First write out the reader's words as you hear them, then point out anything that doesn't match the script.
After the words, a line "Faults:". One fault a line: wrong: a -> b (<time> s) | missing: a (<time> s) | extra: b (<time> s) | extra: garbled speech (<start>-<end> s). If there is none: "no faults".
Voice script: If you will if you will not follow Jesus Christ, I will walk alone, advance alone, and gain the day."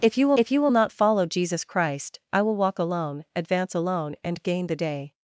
If you will if you will not follow Jesus Christ, I will walk alone, advance alone, and gain the day."
Faults:
no faults